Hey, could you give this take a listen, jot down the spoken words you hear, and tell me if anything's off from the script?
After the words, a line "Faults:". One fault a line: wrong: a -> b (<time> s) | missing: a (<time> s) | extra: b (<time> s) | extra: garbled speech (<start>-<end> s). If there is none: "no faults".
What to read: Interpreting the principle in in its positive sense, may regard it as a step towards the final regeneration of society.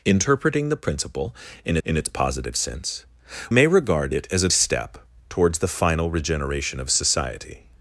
Interpreting the principle in in its positive sense, may regard it as a step towards the final regeneration of society.
Faults:
no faults